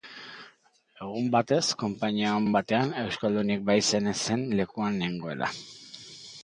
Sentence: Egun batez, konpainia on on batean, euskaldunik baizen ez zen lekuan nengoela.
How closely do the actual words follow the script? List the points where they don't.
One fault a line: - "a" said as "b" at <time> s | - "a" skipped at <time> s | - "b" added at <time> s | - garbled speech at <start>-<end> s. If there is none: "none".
none